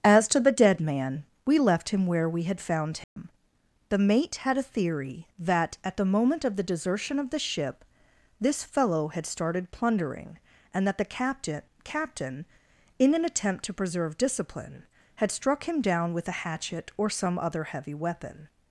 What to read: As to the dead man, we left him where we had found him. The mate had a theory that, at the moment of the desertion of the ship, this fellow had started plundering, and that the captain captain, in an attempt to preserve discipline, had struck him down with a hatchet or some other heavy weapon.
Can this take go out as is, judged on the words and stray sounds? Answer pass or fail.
fail